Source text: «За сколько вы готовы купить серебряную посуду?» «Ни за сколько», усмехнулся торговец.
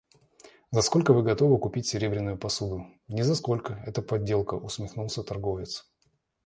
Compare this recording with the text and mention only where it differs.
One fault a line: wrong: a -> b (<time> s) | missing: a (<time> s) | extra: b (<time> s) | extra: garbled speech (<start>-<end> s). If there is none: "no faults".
extra: это подделка (3.9 s)